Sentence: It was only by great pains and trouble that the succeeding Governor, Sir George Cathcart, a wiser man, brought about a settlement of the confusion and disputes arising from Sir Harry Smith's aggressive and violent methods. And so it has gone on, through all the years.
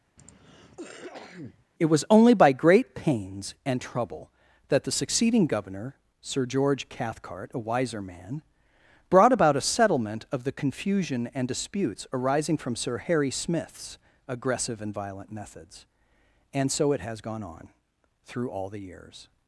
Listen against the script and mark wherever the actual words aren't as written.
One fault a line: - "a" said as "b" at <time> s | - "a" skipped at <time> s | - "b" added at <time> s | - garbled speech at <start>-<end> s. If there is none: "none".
none